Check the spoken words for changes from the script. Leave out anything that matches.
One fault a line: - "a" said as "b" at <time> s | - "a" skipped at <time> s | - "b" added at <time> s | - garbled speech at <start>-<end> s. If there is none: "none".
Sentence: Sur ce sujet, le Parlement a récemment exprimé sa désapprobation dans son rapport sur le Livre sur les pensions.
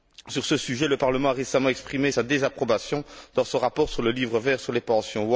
- "vert" added at 4.4 s